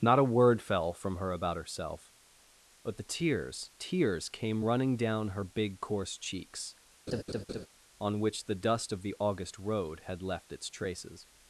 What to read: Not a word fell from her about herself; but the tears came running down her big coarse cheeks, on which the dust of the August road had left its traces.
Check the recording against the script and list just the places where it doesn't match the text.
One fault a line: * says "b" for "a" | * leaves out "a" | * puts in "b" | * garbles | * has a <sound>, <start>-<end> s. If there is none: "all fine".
* puts in "tears"
* has a laugh, 7.1-7.7 s